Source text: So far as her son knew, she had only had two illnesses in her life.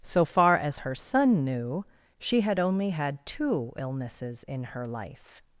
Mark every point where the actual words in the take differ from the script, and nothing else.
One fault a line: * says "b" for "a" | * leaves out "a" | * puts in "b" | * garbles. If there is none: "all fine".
all fine